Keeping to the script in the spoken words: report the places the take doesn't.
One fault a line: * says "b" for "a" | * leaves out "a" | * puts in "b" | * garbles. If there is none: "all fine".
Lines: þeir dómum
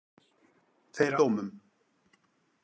all fine